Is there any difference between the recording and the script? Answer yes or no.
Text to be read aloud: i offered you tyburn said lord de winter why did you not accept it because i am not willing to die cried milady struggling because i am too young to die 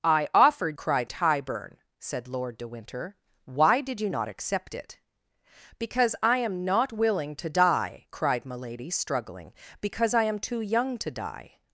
yes